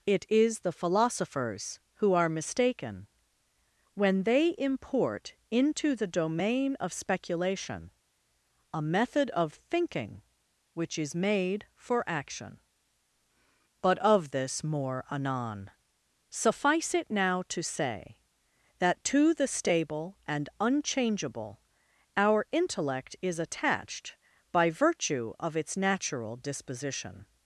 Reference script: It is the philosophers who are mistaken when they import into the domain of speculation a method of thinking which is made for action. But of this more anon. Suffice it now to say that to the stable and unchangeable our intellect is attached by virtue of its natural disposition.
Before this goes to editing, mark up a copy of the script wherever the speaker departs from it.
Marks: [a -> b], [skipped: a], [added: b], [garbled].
It is the philosophers who are mistaken when they import into the domain of speculation a method of thinking which is made for action. But of this more anon. Suffice it now to say that to the stable and unchangeable our intellect is attached by virtue of its natural disposition.